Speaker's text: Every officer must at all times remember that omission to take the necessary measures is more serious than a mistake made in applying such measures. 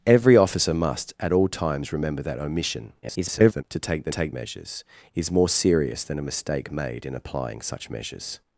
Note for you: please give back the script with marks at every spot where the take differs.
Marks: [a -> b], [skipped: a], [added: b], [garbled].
Every officer must at all times remember that omission [garbled] to take the [necessary -> take] measures is more serious than a mistake made in applying such measures.